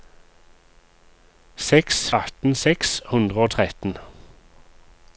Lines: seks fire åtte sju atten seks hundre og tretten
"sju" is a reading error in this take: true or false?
true